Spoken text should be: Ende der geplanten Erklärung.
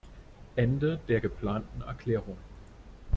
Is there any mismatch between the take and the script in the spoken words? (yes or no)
no